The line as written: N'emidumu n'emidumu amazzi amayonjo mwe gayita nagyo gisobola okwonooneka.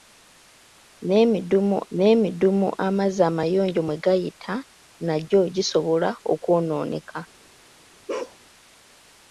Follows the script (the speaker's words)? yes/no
yes